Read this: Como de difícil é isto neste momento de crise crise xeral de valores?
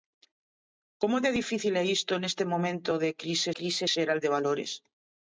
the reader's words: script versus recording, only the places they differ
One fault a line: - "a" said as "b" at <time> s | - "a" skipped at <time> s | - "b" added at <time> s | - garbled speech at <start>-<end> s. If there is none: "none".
none